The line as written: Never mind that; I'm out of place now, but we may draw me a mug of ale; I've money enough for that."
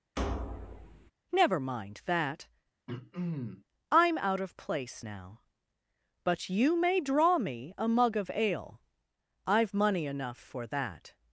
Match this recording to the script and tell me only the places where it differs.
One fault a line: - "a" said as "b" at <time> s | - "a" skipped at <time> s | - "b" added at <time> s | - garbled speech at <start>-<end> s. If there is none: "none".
- "we" said as "you" at 6.5 s